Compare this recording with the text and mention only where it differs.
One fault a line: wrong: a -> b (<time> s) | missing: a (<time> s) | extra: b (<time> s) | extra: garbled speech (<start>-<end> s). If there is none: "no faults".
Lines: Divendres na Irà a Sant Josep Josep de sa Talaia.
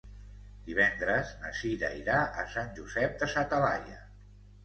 extra: Cira (1.6 s)
missing: Josep (3.2 s)